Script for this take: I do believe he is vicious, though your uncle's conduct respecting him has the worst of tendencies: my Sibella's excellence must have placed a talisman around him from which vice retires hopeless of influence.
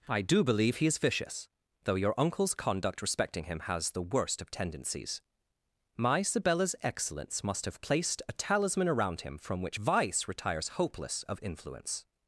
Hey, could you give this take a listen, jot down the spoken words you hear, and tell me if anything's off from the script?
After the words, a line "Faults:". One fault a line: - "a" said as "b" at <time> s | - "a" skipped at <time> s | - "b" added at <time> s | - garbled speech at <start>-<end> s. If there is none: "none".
I do believe he is vicious, though your uncle's conduct respecting him has the worst of tendencies: my Sibella's excellence must have placed a talisman around him from which vice retires hopeless of influence.
Faults:
none